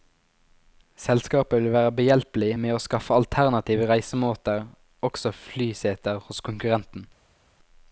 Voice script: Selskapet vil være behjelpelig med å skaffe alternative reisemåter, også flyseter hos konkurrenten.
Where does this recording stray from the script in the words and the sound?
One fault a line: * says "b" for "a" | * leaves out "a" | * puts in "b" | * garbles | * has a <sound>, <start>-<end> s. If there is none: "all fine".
all fine